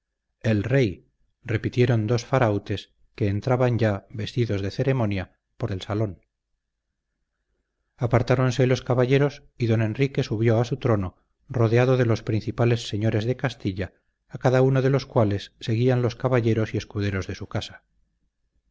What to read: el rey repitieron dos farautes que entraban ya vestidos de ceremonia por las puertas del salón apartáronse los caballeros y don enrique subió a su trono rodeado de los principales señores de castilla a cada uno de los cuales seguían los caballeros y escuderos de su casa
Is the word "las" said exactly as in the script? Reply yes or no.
no